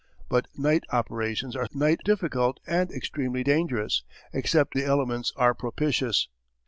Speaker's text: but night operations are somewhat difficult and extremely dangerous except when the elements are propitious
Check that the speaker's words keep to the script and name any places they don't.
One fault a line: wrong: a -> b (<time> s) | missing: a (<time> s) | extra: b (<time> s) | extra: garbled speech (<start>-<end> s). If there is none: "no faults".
wrong: somewhat -> night (1.7 s)
missing: when (4.7 s)